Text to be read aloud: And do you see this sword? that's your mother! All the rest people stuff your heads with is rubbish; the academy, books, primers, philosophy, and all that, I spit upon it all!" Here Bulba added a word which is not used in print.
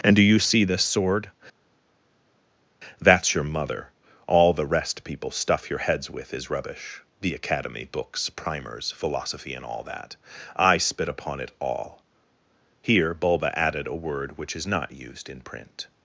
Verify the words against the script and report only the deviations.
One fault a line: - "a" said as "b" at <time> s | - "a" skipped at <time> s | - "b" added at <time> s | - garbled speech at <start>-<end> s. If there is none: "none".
none